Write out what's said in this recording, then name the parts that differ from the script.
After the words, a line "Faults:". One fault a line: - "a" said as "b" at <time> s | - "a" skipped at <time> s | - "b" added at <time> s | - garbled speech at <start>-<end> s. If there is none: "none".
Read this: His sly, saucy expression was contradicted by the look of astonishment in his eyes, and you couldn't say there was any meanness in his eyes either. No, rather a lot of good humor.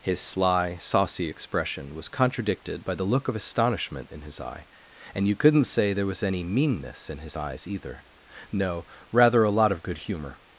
His sly, saucy expression was contradicted by the look of astonishment in his eye, and you couldn't say there was any meanness in his eyes either. No, rather a lot of good humor.
Faults:
- "eyes" said as "eye" at 4.4 s